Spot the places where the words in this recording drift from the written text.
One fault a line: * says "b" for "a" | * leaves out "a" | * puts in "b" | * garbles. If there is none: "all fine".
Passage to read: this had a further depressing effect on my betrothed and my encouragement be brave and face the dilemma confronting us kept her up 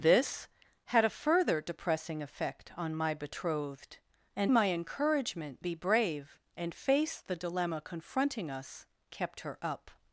all fine